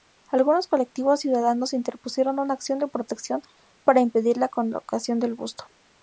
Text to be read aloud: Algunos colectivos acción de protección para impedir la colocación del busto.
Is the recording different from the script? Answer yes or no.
yes